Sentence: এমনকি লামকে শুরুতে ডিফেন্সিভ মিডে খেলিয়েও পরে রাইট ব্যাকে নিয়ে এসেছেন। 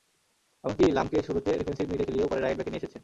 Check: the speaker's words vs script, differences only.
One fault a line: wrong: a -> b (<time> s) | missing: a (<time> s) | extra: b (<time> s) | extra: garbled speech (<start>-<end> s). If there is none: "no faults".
no faults